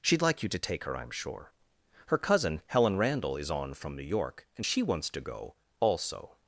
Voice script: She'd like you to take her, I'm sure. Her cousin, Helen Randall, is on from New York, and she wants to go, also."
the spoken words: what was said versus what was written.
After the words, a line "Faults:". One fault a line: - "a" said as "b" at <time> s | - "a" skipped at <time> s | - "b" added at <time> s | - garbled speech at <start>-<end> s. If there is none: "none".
She'd like you to take her, I'm sure. Her cousin, Helen Randall, is on from New York, and she wants to go, also."
Faults:
none